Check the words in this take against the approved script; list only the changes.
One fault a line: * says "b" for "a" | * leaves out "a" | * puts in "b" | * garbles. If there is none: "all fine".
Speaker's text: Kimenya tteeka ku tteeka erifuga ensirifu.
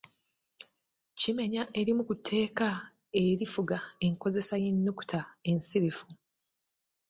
* says "erimu" for "tteeka"
* puts in "enkozesa y'ennukuta"